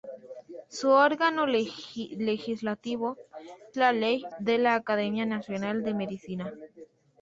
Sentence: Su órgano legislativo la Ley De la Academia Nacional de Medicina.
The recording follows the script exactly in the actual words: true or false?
true